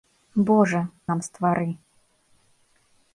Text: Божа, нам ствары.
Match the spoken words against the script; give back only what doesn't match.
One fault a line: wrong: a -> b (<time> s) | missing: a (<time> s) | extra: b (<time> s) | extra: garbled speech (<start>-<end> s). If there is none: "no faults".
no faults